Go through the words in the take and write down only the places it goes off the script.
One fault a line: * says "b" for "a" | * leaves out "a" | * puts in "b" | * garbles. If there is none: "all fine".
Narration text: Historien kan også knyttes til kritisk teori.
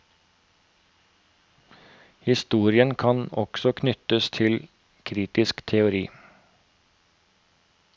all fine